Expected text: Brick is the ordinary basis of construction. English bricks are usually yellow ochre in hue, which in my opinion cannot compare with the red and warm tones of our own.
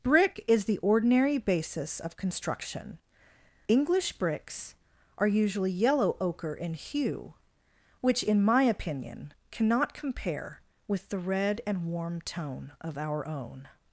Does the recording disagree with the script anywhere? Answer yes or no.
yes